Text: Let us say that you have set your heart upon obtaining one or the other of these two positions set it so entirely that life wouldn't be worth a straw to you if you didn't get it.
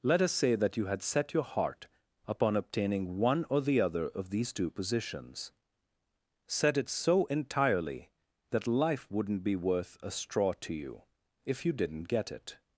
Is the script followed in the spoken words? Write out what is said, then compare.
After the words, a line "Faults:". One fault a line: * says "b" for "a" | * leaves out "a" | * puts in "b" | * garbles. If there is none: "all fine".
Let us say that you had set your heart upon obtaining one or the other of these two positions set it so entirely that life wouldn't be worth a straw to you if you didn't get it.
Faults:
* says "had" for "have"